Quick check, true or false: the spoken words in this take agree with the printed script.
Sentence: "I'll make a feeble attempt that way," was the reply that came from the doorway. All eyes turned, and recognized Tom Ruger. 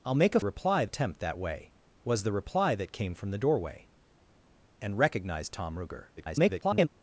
false